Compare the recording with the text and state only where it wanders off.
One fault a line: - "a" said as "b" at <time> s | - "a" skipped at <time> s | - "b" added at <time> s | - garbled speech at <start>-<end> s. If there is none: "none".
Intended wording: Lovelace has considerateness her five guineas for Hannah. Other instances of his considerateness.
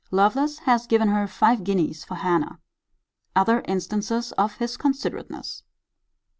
- "considerateness" said as "given" at 0.9 s